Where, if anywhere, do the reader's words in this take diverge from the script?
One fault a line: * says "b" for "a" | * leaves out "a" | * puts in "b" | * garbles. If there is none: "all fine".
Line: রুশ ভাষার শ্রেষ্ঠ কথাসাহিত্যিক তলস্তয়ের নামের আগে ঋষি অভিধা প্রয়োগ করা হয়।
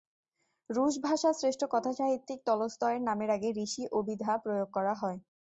all fine